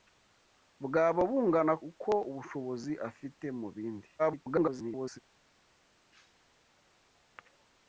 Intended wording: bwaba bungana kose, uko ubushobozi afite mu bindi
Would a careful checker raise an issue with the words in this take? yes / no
yes